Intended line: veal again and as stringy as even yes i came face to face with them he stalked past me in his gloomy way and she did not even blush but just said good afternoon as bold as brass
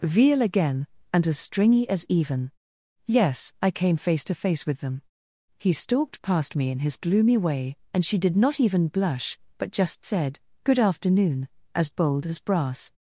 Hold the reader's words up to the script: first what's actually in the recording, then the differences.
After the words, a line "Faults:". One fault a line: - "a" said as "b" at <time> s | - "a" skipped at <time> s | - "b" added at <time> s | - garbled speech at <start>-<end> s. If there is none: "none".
veal again and as stringy as even yes i came face to face with them he stalked past me in his gloomy way and she did not even blush but just said good afternoon as bold as brass
Faults:
none